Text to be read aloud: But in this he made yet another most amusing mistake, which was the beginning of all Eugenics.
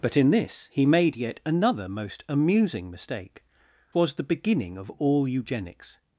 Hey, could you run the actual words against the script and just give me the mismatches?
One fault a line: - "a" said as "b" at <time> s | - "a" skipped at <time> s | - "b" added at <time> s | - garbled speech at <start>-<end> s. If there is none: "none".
- "which" skipped at 3.4 s